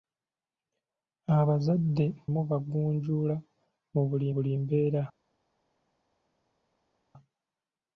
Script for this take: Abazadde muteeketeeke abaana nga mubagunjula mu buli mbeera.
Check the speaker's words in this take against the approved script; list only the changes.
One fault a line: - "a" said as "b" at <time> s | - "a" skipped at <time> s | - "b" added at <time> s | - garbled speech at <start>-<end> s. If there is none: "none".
- "muteeketeeke abaana nga" skipped at 2.0 s
- "buli" added at 4.3 s